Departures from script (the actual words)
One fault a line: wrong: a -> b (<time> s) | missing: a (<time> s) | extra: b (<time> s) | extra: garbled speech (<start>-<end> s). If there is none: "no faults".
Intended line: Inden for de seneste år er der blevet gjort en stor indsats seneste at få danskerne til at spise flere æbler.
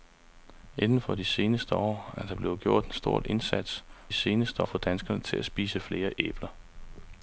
no faults